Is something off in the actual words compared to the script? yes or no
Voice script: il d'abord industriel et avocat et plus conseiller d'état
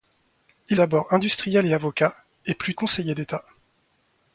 no